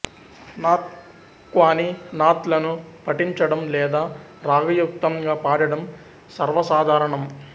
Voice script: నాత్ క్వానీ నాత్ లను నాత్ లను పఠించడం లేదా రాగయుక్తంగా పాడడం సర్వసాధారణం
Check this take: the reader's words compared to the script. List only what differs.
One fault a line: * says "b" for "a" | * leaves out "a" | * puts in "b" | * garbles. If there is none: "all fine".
* leaves out "నాత్ లను"